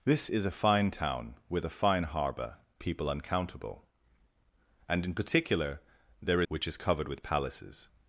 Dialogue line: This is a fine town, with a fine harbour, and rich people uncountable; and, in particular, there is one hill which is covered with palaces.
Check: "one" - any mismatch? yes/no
yes